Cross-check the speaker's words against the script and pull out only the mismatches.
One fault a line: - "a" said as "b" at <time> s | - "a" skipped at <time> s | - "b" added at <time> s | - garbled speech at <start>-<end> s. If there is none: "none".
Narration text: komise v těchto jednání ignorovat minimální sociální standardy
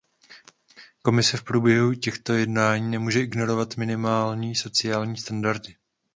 - "průběhu" added at 1.4 s
- "nemůže" added at 2.9 s